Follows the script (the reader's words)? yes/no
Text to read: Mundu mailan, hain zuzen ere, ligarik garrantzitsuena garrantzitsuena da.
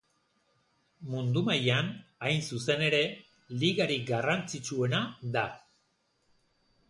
no